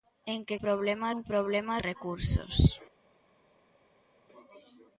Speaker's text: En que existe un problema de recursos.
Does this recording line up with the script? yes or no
no